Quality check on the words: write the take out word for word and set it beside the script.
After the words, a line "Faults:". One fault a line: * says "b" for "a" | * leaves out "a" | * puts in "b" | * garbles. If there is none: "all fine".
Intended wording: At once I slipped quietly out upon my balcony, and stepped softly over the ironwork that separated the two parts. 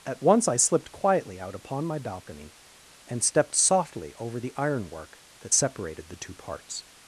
At once I slipped quietly out upon my balcony, and stepped softly over the ironwork that separated the two parts.
Faults:
all fine